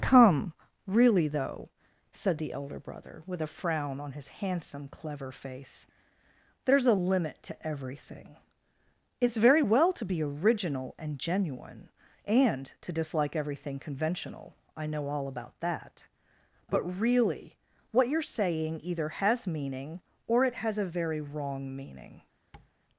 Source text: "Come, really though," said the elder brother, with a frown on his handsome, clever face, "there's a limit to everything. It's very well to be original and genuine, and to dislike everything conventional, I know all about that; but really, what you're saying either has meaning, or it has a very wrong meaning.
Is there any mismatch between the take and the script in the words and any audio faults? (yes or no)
yes